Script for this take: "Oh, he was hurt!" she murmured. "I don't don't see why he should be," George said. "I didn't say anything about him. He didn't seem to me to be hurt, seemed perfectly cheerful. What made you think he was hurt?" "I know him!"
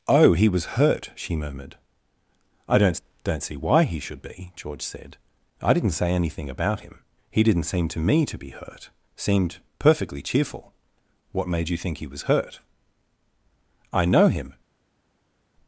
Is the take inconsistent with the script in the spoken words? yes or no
no